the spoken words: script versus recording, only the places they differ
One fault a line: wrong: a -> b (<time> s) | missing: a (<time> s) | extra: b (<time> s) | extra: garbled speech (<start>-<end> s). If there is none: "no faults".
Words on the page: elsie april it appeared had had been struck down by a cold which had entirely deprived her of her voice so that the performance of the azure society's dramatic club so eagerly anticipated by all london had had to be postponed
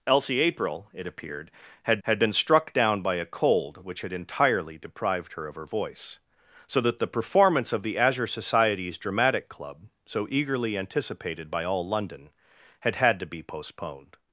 no faults